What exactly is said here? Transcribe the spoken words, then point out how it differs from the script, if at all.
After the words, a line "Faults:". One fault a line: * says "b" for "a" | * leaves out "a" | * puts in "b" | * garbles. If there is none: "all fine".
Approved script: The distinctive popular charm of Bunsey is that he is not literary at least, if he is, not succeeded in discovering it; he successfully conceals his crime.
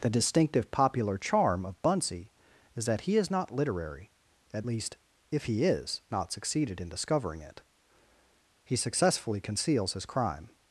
The distinctive popular charm of Bunsey is that he is not literary at least, if he is, not succeeded in discovering it; he successfully conceals his crime.
Faults:
all fine